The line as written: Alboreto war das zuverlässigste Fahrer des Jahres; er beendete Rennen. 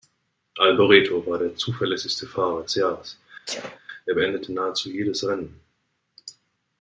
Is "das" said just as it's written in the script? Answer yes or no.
no